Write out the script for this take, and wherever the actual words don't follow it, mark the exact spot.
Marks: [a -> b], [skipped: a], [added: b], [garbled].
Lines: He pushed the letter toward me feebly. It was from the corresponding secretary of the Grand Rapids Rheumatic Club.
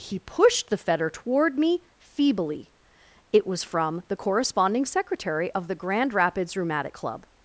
He pushed the [letter -> fetter] toward me feebly. It was from the corresponding secretary of the Grand Rapids Rheumatic Club.